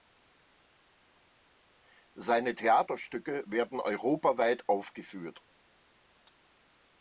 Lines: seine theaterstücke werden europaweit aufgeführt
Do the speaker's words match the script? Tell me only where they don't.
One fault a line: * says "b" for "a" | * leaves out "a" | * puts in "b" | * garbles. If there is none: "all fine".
all fine